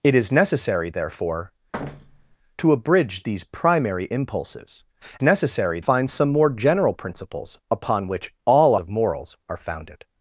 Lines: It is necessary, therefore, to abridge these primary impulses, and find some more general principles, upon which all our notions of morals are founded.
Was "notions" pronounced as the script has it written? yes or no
no